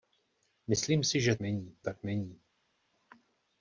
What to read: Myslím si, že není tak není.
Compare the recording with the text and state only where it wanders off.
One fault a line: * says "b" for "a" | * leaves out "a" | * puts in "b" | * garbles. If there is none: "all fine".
all fine